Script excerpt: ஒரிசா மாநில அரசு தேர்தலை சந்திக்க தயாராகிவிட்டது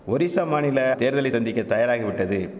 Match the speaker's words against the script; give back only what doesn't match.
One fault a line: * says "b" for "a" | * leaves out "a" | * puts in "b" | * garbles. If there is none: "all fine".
* leaves out "அரசு"